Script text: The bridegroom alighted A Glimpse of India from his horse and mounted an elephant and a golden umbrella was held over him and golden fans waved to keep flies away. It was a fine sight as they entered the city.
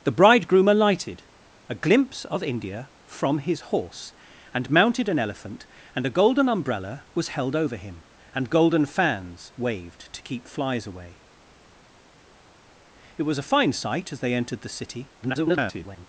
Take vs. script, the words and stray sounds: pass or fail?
fail